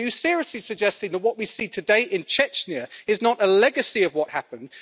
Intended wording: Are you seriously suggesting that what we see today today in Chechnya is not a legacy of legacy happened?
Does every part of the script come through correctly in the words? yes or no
no